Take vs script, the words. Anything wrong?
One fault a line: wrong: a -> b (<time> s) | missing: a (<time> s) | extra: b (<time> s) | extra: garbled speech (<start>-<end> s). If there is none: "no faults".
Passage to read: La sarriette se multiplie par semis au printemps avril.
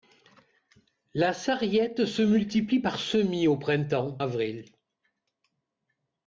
no faults